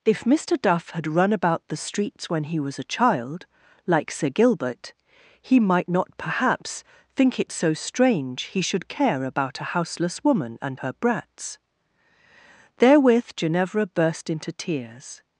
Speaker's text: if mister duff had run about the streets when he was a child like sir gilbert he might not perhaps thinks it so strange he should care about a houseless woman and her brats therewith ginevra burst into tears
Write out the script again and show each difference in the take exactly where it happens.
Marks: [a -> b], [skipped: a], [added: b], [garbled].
if mister duff had run about the streets when he was a child like sir gilbert he might not perhaps [thinks -> think] it so strange he should care about a houseless woman and her brats therewith ginevra burst into tears